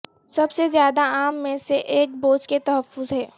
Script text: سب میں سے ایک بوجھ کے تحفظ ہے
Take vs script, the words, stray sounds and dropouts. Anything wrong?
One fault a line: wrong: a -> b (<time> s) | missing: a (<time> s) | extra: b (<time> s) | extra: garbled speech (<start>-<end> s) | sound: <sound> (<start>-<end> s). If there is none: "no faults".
extra: سے زیادہ عام (0.5 s)